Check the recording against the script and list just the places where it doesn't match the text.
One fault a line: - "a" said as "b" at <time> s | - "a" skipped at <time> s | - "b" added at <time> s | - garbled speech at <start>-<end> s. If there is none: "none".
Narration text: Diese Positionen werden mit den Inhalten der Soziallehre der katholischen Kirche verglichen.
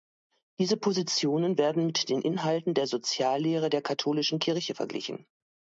none